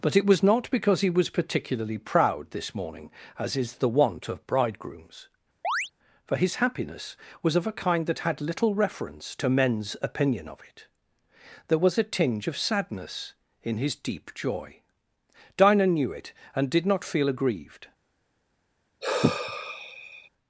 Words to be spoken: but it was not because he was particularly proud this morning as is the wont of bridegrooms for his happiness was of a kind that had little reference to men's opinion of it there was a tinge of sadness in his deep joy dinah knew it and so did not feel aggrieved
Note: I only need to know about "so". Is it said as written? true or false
false